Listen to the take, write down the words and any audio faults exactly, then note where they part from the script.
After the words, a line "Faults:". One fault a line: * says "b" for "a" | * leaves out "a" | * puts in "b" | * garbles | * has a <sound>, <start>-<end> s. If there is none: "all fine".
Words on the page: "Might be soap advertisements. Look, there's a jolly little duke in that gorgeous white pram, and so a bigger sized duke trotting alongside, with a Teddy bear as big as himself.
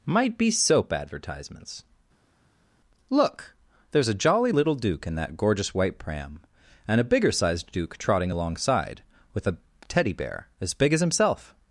"Might be soap advertisements. Look, there's a jolly little duke in that gorgeous white pram, and a bigger sized duke trotting alongside, with a Teddy bear as big as himself.
Faults:
* leaves out "so"